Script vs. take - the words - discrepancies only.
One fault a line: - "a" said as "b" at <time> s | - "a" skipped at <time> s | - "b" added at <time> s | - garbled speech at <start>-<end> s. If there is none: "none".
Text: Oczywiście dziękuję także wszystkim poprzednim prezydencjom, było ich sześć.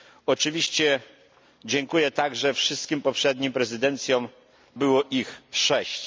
none